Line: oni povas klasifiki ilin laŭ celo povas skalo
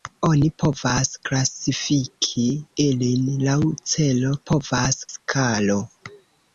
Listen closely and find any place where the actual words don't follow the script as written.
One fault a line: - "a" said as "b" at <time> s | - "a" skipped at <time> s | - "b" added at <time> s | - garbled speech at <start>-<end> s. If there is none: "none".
none